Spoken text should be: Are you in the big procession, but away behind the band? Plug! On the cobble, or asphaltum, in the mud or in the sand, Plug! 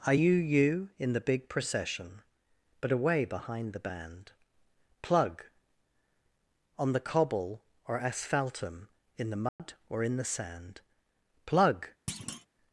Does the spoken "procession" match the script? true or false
true